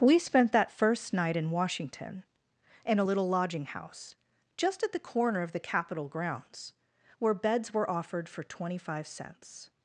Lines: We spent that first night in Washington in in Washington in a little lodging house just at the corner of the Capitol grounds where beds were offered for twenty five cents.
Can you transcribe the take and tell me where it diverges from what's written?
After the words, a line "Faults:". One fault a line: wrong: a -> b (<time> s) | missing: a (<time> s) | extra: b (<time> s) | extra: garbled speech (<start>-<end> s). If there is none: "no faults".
We spent that first night in Washington in a little lodging house just at the corner of the Capitol grounds where beds were offered for twenty five cents.
Faults:
missing: in Washington in (3.0 s)